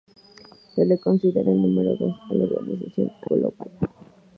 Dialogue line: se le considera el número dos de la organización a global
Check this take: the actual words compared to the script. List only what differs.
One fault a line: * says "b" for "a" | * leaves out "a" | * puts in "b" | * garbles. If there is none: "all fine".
all fine